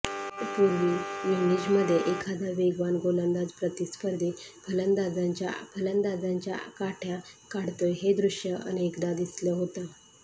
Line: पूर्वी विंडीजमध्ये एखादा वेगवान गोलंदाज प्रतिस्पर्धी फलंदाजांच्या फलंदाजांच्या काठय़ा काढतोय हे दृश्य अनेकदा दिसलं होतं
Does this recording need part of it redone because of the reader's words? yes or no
no